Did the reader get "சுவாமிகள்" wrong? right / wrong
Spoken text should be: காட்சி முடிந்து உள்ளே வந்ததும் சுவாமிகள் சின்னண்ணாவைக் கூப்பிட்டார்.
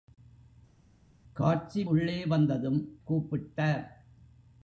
wrong